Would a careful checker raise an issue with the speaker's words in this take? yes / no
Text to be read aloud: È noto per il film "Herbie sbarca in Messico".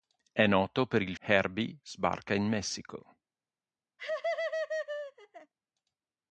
yes